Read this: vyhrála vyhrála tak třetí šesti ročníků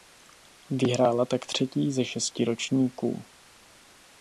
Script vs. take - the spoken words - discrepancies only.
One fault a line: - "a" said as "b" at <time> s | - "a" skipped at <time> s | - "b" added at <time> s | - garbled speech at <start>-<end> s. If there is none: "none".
- "vyhrála" skipped at 1.2 s
- "ze" added at 1.9 s